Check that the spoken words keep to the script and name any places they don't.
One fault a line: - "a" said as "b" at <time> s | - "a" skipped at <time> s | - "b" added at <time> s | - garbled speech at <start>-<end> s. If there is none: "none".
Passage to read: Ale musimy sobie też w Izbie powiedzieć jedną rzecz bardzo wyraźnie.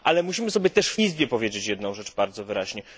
none